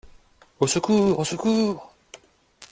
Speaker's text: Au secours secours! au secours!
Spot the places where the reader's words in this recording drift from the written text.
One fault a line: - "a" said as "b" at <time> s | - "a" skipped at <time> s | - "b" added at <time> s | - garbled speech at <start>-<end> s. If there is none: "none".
- "secours" skipped at 1.2 s